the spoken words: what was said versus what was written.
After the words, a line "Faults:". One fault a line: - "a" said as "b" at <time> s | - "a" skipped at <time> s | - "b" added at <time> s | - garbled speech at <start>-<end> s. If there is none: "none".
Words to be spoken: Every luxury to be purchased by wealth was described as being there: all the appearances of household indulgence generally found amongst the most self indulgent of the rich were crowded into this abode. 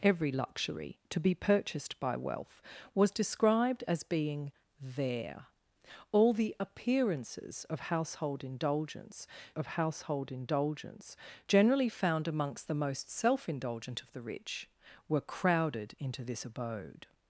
Every luxury to be purchased by wealth was described as being there: all the appearances of household indulgence of household indulgence generally found amongst the most self indulgent of the rich were crowded into this abode.
Faults:
- "of household indulgence" added at 9.5 s